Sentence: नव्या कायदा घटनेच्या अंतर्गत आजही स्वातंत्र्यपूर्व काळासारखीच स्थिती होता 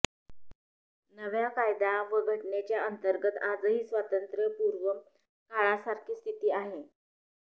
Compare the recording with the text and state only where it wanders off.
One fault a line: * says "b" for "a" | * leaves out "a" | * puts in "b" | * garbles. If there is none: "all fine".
* puts in "व"
* says "आहे" for "होता"